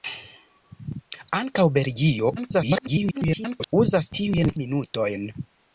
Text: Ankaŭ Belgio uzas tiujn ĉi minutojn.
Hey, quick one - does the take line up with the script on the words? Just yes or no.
no